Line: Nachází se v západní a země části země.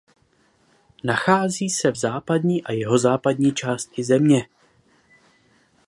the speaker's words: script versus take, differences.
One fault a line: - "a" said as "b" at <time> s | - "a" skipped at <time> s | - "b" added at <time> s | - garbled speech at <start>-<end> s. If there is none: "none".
- "země" said as "jihozápadní" at 2.7 s